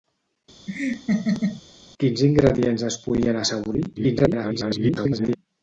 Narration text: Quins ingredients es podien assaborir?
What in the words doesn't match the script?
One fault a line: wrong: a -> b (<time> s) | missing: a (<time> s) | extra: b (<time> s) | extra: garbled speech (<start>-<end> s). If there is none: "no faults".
extra: garbled speech (4.0-5.4 s)